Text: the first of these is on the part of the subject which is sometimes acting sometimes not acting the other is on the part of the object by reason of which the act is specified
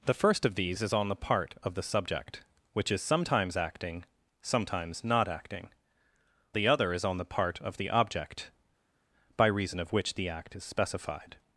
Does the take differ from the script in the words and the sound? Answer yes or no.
no